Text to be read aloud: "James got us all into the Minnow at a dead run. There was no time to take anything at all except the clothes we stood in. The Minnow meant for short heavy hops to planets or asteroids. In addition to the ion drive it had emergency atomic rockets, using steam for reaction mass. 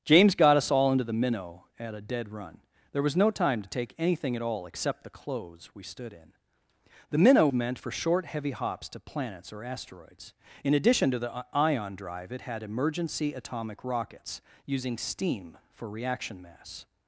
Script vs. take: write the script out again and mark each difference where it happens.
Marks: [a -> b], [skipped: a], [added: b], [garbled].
"James got us all into the Minnow at a dead run. There was no time to take anything at all except the clothes we stood in. The Minnow meant for short heavy hops to planets or asteroids. In addition to the ion drive it had emergency atomic rockets, using steam for reaction mass.